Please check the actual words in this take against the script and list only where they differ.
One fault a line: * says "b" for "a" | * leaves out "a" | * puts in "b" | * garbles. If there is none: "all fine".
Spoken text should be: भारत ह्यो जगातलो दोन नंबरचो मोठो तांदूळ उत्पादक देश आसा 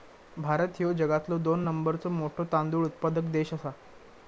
all fine